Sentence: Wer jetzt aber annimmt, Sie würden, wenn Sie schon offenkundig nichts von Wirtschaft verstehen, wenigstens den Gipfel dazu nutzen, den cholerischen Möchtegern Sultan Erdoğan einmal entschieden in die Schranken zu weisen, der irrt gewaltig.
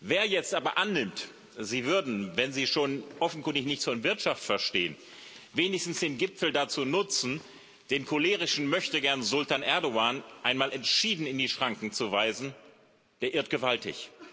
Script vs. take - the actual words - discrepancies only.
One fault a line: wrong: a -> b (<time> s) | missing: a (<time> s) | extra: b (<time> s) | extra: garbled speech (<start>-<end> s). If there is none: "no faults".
no faults